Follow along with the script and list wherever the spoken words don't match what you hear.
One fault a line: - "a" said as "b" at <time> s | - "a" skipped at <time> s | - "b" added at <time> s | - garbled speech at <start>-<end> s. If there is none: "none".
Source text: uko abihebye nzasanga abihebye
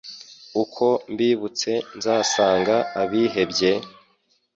- "abihebye" said as "mbibutse" at 1.1 s